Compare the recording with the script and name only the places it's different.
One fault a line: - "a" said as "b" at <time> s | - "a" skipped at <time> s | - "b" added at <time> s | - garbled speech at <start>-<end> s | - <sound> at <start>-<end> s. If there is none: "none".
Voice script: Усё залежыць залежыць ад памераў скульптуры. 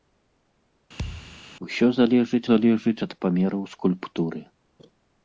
- thud at 1.0-1.4 s